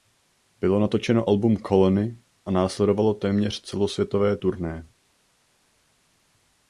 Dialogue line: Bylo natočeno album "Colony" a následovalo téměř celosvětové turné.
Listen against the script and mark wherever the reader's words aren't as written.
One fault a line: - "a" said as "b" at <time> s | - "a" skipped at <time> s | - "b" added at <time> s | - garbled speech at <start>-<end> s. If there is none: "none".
none